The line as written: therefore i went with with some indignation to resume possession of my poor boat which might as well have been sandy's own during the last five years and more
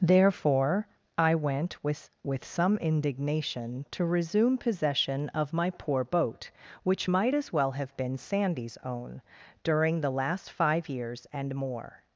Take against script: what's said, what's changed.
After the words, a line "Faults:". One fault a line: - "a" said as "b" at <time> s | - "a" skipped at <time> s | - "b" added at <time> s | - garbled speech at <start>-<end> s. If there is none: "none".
therefore i went with with some indignation to resume possession of my poor boat which might as well have been sandy's own during the last five years and more
Faults:
none